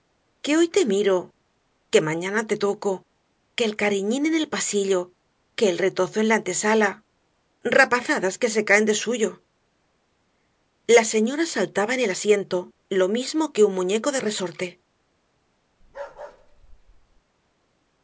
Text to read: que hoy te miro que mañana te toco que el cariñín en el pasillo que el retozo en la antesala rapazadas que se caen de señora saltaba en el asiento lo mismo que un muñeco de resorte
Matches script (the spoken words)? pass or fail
fail